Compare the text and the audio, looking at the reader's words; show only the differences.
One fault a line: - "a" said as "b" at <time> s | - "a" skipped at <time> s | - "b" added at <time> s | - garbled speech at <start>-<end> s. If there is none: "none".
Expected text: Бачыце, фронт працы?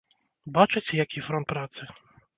- "які" added at 1.0 s